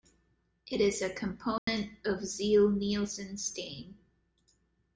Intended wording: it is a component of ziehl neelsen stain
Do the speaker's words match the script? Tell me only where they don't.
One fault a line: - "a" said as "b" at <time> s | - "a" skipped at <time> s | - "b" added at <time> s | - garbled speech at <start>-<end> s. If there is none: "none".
none